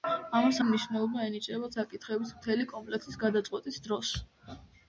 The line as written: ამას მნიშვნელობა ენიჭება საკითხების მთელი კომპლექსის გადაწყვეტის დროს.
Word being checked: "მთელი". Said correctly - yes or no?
yes